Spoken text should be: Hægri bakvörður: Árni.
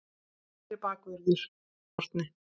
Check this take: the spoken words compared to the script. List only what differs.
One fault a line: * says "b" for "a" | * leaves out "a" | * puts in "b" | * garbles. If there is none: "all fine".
all fine